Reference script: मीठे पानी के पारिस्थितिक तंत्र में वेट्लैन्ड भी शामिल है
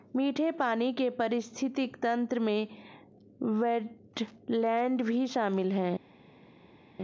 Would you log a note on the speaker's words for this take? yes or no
no